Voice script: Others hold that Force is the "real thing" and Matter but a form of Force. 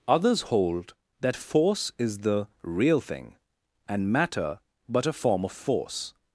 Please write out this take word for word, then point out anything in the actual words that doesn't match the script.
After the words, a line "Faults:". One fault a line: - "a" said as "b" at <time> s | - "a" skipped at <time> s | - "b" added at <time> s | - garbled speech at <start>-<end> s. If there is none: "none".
Others hold that Force is the "real thing" and Matter but a form of Force.
Faults:
none